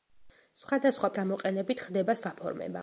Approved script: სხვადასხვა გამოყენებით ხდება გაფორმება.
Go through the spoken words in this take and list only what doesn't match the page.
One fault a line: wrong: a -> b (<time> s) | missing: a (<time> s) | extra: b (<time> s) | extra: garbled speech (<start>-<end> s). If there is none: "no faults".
no faults